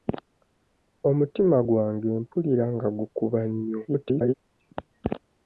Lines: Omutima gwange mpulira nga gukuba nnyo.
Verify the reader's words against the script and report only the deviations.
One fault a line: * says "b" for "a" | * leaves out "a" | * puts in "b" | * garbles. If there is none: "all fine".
* garbles